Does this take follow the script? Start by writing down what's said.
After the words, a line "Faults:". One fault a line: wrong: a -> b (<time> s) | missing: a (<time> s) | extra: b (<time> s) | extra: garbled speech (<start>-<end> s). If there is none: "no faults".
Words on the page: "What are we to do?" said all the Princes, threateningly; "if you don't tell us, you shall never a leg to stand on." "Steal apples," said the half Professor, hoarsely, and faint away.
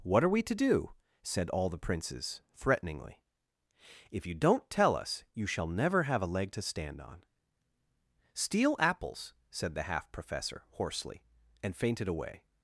"What are we to do?" said all the Princes, threateningly; "if you don't tell us, you shall never have a leg to stand on." "Steal apples," said the half Professor, hoarsely, and fainted away.
Faults:
extra: have (6.0 s)
wrong: faint -> fainted (11.7 s)